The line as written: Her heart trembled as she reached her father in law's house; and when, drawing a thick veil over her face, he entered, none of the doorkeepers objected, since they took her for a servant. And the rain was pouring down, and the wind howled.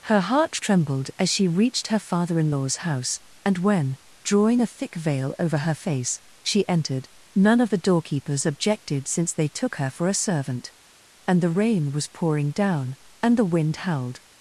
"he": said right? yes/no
no